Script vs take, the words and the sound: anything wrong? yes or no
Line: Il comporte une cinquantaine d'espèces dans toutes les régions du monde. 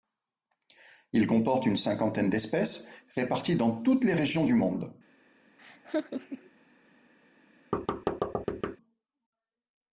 yes